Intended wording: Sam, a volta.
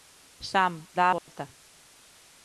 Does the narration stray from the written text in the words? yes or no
yes